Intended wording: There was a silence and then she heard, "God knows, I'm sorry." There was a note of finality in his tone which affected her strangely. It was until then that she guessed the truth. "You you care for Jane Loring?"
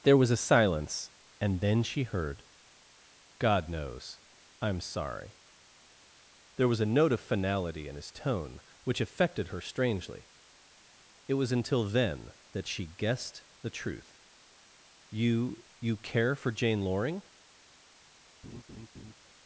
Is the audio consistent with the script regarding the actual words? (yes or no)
yes